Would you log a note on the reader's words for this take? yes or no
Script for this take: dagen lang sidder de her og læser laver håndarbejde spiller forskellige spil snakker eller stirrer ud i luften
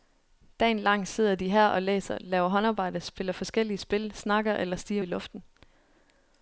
yes